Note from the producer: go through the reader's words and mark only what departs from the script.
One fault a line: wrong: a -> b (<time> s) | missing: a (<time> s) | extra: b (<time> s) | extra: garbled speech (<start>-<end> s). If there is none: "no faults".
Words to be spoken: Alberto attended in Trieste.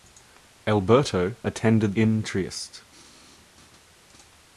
no faults